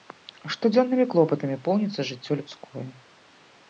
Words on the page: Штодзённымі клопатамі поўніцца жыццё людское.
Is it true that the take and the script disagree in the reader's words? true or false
false